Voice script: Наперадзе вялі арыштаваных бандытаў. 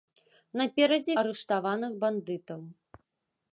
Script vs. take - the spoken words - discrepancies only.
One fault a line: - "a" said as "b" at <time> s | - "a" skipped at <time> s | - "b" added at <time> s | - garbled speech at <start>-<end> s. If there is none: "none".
- "вялі" skipped at 1.1 s